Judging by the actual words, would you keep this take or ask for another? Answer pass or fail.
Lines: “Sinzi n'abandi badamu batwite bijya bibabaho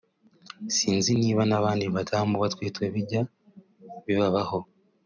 fail